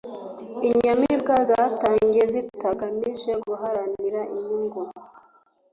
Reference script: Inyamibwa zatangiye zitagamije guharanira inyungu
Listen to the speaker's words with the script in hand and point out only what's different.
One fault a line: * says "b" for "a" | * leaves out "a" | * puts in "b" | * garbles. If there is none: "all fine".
all fine